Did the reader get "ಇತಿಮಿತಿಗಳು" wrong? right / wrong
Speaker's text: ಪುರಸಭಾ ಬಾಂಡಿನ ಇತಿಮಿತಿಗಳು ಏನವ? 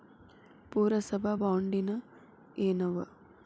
wrong